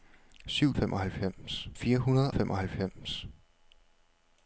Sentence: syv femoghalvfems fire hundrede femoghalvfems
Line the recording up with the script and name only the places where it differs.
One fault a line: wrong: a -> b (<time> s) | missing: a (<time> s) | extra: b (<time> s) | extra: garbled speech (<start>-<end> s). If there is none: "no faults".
no faults